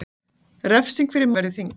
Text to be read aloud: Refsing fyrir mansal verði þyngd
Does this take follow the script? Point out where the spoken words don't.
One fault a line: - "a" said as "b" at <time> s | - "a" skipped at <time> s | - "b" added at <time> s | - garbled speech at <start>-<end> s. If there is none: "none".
- "mansal" skipped at 1.3 s